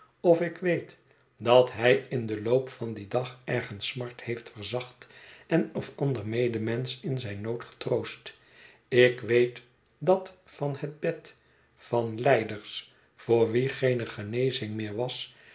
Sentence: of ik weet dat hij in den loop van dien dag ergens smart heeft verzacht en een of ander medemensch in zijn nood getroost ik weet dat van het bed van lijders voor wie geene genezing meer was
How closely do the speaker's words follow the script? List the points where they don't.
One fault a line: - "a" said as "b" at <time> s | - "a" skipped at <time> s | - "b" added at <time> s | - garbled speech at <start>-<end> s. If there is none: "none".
- "een" skipped at 5.7 s